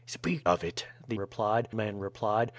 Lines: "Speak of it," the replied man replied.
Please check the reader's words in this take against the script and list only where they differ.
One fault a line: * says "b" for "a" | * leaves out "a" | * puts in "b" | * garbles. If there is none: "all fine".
all fine